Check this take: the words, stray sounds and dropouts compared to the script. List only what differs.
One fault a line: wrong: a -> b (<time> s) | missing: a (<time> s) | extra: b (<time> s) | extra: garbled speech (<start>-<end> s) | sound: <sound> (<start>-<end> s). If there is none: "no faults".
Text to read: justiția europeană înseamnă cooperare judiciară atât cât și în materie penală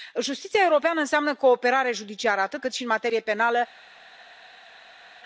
no faults